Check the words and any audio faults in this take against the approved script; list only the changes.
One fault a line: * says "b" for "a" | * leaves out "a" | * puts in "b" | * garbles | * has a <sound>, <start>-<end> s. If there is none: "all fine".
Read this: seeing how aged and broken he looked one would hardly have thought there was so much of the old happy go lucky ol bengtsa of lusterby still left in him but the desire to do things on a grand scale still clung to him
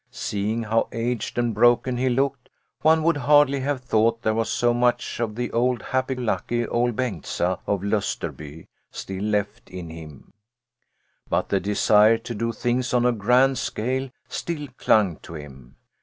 * leaves out "go"